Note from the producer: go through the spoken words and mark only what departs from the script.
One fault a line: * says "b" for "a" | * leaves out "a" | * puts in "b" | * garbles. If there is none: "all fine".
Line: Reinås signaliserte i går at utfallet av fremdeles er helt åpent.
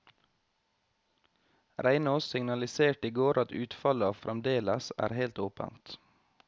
all fine